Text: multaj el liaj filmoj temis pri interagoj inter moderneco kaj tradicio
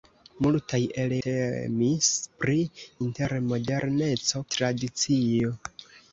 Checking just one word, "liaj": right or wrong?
wrong